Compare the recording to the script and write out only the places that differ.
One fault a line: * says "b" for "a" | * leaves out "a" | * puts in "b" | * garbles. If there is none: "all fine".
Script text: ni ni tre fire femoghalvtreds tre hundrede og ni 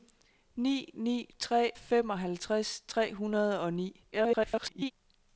* leaves out "fire"
* garbles